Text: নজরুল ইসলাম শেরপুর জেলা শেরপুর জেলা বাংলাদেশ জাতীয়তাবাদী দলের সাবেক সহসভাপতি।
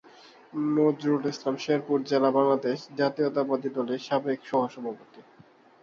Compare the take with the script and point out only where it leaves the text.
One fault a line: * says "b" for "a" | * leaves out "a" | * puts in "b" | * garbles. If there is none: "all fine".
* leaves out "শেরপুর জেলা"